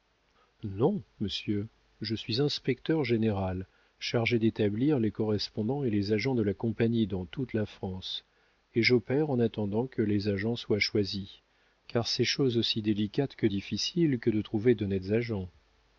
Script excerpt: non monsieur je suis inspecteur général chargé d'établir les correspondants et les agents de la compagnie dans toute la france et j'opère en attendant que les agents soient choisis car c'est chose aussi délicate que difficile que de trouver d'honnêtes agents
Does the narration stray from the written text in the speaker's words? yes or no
no